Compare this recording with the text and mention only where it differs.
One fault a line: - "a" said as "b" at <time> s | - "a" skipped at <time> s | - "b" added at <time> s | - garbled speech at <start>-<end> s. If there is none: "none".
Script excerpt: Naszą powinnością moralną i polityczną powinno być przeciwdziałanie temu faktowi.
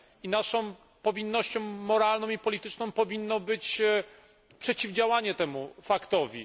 none